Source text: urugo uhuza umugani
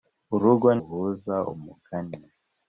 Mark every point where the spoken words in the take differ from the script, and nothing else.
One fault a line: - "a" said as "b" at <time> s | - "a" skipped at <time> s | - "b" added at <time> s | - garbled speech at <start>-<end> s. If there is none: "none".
none